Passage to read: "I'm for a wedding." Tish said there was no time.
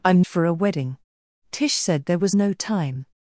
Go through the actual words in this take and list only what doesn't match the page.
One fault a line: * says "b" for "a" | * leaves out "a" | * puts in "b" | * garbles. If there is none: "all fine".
all fine